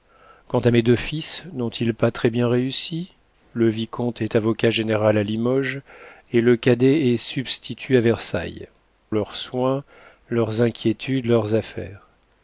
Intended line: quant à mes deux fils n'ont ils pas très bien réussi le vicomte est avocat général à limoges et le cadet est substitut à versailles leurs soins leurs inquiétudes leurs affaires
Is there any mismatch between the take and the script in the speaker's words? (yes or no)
no